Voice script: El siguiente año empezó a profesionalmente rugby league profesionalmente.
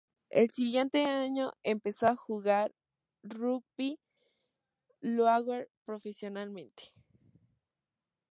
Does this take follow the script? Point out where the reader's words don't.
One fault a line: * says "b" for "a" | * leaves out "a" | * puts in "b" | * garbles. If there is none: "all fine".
* says "jugar" for "profesionalmente"